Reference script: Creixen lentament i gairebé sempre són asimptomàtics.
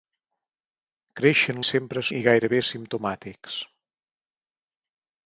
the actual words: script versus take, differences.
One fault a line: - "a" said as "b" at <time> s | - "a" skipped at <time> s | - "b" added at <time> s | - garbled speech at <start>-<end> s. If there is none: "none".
- "lentament" said as "sempre" at 1.7 s
- "sempre són" skipped at 2.6 s